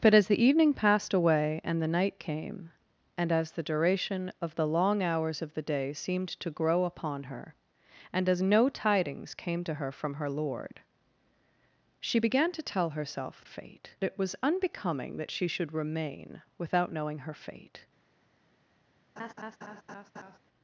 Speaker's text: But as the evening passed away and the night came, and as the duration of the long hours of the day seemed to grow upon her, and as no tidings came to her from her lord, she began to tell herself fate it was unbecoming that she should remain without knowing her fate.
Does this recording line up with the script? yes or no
yes